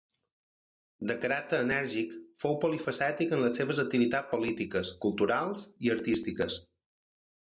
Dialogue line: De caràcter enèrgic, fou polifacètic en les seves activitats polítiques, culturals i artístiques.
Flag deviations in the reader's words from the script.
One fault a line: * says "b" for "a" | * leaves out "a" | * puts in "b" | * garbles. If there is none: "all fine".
all fine